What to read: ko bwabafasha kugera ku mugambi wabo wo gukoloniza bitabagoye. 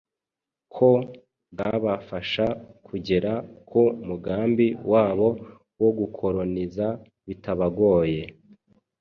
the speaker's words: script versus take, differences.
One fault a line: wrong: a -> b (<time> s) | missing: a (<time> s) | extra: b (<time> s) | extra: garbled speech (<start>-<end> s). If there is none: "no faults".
no faults